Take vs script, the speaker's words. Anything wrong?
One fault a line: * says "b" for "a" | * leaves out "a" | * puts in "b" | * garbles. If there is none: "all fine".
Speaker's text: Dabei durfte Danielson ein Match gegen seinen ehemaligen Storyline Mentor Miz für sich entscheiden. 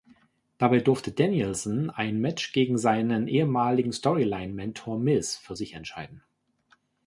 all fine